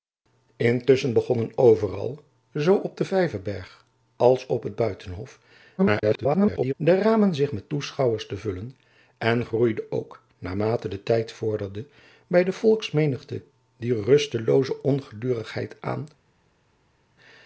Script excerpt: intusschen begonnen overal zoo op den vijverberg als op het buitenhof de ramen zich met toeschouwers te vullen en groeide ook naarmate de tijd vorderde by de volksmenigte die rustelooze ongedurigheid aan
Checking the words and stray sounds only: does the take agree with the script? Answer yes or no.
no